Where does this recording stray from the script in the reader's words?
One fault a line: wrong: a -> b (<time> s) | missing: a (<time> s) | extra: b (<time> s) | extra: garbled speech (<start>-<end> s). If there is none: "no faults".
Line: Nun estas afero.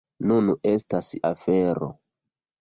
no faults